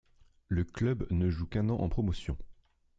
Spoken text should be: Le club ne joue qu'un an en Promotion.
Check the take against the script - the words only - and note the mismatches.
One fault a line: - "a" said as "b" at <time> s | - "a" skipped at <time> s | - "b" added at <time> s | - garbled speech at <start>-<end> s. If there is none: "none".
none